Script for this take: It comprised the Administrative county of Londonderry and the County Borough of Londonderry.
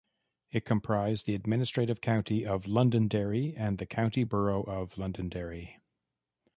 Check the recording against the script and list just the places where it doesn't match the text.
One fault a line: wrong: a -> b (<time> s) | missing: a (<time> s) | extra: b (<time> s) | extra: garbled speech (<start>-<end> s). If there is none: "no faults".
no faults